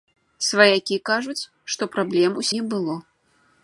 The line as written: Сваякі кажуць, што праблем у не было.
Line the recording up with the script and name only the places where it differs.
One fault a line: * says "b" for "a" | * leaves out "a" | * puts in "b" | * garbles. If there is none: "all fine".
all fine